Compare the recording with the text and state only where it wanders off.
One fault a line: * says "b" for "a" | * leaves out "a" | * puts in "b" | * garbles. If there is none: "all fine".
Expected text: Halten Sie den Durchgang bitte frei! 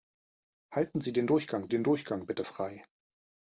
* puts in "den Durchgang"